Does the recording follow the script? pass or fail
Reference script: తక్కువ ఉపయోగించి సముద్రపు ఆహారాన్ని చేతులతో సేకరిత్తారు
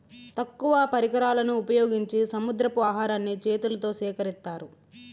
fail